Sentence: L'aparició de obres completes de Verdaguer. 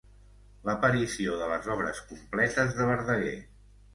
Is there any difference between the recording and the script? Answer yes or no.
yes